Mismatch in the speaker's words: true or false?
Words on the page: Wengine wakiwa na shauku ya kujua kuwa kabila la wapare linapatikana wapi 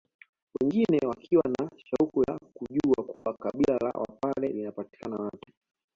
false